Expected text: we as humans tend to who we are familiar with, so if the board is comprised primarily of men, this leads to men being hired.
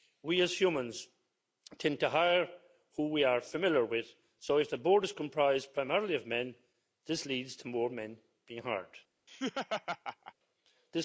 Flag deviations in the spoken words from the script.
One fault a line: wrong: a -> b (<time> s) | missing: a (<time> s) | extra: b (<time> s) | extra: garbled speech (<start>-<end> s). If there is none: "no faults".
extra: hire (2.1 s)
extra: more (7.7 s)